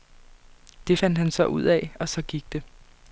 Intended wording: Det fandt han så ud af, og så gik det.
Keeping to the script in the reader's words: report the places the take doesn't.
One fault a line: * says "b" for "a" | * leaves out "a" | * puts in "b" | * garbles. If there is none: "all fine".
all fine